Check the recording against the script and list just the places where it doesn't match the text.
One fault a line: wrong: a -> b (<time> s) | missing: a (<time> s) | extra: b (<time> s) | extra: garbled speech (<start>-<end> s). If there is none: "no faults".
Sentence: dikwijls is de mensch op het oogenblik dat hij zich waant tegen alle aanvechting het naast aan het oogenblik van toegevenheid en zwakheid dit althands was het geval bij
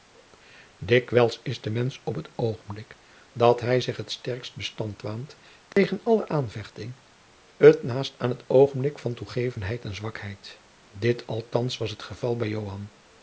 extra: het sterkst bestand (4.0 s)